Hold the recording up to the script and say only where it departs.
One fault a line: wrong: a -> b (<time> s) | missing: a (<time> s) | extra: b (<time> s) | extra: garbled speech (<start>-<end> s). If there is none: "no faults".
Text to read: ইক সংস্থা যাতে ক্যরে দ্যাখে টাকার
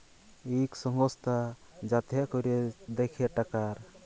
no faults